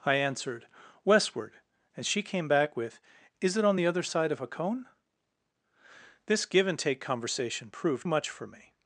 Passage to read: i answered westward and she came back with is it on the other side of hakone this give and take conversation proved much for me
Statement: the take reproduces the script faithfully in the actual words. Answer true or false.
true